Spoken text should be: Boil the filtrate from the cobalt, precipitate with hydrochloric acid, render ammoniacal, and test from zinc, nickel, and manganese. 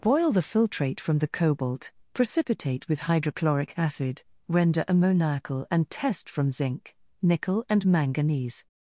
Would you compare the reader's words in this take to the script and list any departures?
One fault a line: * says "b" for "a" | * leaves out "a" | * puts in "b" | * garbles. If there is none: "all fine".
all fine